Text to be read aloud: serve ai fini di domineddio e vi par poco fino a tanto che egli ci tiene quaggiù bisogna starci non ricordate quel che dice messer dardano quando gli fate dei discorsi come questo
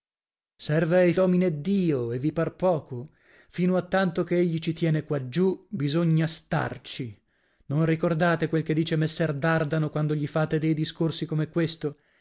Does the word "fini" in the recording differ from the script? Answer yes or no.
yes